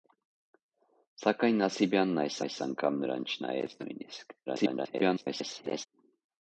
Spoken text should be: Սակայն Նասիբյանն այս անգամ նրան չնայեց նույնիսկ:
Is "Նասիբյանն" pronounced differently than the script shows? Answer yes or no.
no